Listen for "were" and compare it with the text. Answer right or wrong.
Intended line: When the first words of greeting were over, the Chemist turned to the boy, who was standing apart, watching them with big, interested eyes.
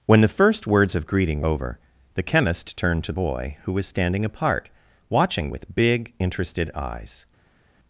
wrong